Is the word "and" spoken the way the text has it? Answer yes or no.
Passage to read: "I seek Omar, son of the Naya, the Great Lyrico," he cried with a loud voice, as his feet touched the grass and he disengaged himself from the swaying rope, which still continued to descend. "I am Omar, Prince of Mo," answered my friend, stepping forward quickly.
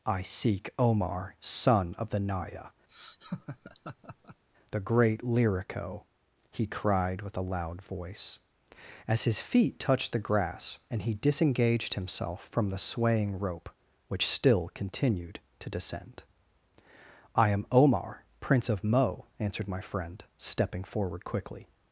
yes